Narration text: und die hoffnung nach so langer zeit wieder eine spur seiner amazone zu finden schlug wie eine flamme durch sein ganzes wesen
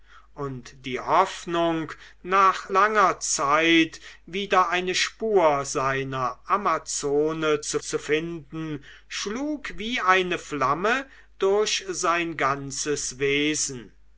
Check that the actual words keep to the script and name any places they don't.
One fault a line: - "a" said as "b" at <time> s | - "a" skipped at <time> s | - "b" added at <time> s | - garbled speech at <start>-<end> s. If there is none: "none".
- "so" skipped at 2.7 s
- "zu" added at 7.8 s